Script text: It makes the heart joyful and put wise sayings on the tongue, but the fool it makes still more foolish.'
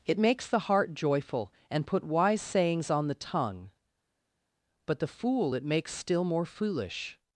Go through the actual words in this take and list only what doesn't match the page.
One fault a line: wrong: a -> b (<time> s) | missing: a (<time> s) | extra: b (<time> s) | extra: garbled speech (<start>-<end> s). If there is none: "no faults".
no faults